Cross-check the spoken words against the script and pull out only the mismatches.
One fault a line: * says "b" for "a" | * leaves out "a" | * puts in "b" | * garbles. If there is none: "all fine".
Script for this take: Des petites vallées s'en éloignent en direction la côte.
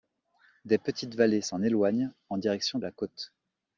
all fine